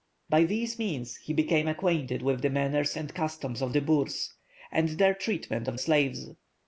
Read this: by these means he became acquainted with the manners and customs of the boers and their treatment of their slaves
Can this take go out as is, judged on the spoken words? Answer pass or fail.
fail